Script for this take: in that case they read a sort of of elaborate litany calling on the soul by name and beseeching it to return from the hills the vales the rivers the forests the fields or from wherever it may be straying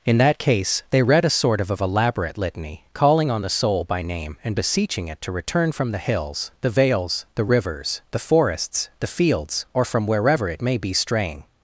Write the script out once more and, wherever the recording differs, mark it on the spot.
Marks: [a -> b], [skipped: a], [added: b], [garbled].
in that case they read a sort of of elaborate litany calling on the soul by name and beseeching it to return from the hills the vales the rivers the forests the fields or from wherever it may be straying